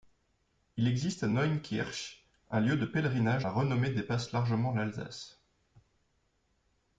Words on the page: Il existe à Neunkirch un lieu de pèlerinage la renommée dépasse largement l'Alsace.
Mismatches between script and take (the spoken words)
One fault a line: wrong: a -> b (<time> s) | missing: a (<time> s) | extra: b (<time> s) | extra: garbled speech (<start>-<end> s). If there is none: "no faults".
no faults